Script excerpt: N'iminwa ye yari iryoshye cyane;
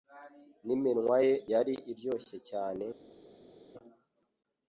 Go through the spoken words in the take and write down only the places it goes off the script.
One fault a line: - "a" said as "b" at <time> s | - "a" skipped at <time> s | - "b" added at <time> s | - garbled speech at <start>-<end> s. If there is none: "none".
none